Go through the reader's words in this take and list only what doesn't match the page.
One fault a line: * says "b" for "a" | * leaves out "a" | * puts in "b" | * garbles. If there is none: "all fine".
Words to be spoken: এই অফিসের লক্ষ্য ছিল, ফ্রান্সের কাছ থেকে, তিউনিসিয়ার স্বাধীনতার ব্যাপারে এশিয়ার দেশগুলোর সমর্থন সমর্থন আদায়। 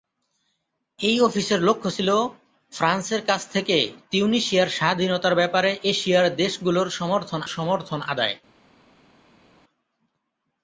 all fine